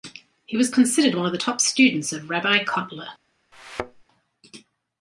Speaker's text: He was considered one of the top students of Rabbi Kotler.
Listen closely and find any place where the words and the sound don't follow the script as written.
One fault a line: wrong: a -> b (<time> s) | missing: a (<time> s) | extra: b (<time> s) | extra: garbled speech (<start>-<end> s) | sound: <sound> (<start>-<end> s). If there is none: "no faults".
sound: thud (3.5-4.0 s)